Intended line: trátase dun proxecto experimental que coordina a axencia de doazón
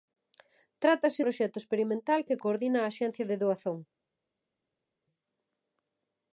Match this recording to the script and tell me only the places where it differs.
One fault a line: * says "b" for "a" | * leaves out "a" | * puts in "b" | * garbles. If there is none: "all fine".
* leaves out "dun"